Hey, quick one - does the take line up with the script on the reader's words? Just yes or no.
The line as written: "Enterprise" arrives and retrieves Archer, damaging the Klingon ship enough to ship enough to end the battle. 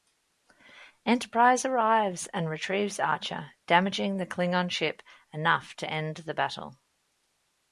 no